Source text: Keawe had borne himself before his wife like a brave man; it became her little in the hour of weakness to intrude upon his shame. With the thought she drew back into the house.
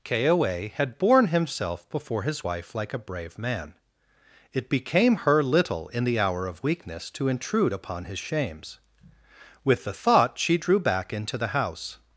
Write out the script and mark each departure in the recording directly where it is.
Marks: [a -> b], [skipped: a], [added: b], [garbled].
Keawe had borne himself before his wife like a brave man; it became her little in the hour of weakness to intrude upon his [shame. -> shames] With the thought she drew back into the house.